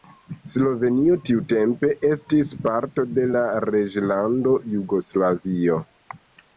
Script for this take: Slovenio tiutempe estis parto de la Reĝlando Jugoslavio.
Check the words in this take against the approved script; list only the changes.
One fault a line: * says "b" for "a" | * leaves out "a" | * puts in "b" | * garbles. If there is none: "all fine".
all fine